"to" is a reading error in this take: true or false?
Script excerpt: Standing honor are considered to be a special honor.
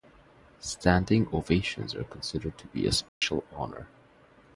false